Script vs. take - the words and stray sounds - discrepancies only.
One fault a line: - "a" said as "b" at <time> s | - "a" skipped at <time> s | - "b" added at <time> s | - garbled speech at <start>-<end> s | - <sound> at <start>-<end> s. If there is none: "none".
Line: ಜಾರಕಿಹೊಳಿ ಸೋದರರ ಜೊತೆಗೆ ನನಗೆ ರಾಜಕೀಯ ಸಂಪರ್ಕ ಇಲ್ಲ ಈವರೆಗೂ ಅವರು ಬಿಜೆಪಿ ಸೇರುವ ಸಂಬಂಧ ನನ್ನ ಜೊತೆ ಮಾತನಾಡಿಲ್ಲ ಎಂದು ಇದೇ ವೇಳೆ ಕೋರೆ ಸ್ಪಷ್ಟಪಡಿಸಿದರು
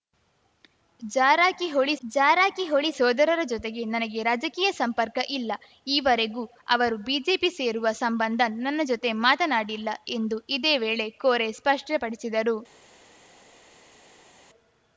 - "ಜಾರಕಿಹೊಳಿ" added at 2.0 s